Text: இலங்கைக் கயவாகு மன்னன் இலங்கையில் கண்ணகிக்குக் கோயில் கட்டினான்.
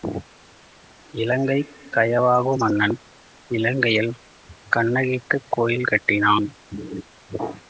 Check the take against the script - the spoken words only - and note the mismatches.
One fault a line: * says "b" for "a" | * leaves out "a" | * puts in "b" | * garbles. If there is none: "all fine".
all fine